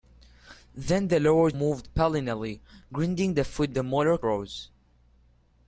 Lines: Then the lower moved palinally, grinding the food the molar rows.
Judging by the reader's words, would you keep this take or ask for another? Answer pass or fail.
pass